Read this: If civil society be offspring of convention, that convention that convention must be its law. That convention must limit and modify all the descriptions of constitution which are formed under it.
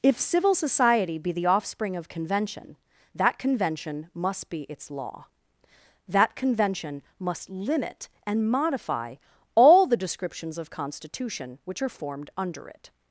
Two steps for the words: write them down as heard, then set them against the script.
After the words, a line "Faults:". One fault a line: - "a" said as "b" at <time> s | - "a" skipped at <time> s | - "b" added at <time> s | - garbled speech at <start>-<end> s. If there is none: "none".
If civil society be the offspring of convention, that convention must be its law. That convention must limit and modify all the descriptions of constitution which are formed under it.
Faults:
- "the" added at 1.3 s
- "that convention" skipped at 4.1 s